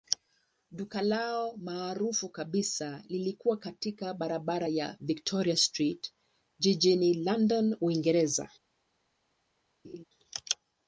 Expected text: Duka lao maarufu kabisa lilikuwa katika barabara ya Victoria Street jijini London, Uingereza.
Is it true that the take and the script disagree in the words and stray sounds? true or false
true